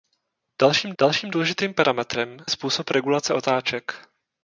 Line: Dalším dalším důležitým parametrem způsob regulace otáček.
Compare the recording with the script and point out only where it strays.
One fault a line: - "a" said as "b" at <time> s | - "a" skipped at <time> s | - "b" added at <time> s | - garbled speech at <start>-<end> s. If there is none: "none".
none